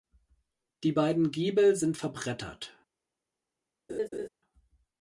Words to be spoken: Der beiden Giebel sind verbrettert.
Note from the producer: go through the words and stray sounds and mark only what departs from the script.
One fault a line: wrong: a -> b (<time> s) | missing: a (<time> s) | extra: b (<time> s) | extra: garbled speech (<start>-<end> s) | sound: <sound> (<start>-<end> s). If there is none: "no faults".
wrong: Der -> Die (0.8 s)
sound: laugh (3.9-4.3 s)